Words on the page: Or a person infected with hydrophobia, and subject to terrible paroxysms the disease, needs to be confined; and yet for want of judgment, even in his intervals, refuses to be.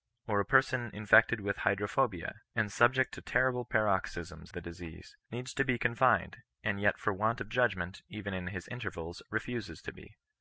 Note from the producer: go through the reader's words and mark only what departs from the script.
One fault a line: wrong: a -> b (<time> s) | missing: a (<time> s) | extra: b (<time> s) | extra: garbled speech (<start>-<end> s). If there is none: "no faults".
no faults